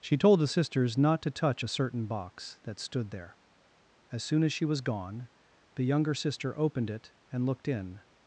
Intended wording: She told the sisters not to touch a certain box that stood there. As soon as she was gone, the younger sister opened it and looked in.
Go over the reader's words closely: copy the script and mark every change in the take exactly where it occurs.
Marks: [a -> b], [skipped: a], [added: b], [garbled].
She told the sisters not to touch a certain box that stood there. As soon as she was gone, the younger sister opened it and looked in.